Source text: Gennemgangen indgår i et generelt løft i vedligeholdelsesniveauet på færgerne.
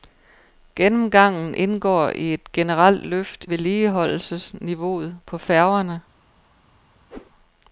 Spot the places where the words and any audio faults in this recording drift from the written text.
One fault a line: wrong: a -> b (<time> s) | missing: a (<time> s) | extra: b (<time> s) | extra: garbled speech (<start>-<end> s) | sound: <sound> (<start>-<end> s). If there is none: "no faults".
missing: i (3.4 s)
sound: whoosh (7.1-7.3 s)